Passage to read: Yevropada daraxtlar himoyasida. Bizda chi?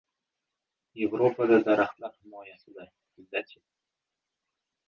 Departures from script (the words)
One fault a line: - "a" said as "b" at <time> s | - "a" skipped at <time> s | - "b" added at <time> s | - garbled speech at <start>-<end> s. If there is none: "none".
none